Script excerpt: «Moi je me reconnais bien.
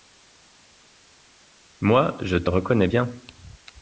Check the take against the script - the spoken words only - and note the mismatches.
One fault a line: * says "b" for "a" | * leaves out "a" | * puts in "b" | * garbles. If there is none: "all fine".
* says "te" for "me"